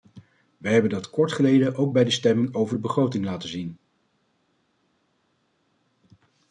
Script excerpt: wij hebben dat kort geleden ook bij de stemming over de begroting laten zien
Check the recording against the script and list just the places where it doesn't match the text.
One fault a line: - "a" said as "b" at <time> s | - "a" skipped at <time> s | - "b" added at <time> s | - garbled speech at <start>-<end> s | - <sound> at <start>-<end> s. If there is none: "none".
none